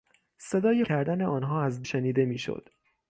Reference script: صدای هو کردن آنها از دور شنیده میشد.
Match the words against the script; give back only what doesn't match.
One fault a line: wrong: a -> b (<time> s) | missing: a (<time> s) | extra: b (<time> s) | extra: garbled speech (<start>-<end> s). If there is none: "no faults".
missing: هو (0.8 s)
missing: دور (1.9 s)